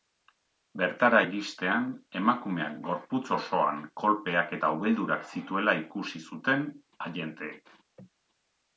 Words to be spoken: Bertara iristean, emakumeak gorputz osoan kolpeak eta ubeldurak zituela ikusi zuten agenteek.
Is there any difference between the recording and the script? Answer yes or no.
no